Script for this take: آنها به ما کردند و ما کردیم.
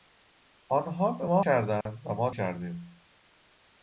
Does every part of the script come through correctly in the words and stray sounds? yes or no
no